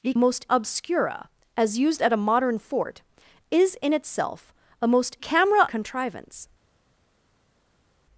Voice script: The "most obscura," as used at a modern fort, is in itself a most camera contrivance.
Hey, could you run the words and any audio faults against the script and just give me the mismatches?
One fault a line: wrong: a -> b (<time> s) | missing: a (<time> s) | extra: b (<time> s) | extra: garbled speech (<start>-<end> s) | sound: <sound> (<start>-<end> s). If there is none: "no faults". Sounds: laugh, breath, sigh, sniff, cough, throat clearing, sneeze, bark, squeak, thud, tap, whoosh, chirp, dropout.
no faults